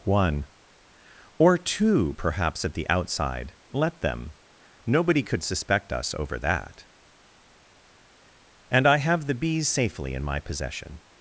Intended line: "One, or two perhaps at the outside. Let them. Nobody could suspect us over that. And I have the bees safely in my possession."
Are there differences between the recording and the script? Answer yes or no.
no